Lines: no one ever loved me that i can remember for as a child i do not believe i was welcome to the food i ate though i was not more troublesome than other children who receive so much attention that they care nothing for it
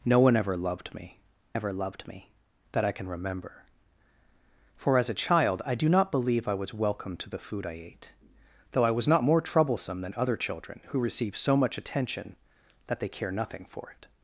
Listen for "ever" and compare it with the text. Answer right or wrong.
right